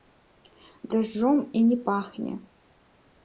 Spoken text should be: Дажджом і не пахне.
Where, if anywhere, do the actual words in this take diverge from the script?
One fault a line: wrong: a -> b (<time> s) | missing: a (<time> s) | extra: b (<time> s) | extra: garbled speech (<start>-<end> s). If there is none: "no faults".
no faults